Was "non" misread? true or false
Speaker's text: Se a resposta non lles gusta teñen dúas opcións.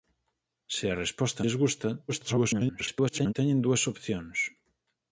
true